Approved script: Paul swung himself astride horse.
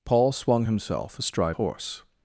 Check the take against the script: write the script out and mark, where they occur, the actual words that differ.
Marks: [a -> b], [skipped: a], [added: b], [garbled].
Paul swung himself astride horse.